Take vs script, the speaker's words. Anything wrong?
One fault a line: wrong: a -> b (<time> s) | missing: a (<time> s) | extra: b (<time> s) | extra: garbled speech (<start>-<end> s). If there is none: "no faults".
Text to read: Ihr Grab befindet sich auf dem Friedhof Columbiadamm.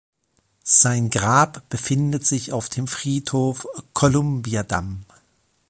wrong: Ihr -> Sein (0.6 s)